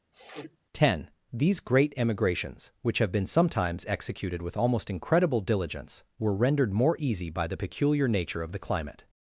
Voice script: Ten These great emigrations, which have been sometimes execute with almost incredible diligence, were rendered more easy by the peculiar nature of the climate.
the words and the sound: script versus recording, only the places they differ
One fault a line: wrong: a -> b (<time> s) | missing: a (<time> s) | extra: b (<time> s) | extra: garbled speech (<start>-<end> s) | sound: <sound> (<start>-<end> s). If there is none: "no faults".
sound: sniff (0.1-0.6 s)
wrong: execute -> executed (3.9 s)